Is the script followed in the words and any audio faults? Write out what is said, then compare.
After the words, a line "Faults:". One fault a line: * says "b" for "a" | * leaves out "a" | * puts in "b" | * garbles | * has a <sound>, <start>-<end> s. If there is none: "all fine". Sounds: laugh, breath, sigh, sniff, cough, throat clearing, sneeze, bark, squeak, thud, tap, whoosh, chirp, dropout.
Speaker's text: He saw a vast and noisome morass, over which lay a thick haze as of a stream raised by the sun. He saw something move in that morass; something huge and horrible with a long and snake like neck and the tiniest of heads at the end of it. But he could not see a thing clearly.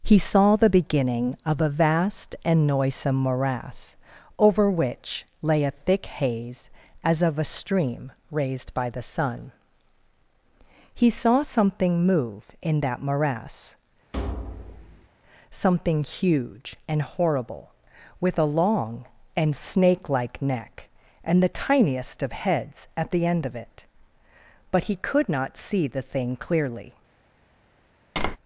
He saw the beginning of a vast and noisome morass, over which lay a thick haze as of a stream raised by the sun. He saw something move in that morass; something huge and horrible with a long and snake like neck and the tiniest of heads at the end of it. But he could not see the thing clearly.
Faults:
* puts in "the beginning of"
* has a thud, 14.1-15.1 s
* says "the" for "a"
* has a tap, 28.2-28.4 s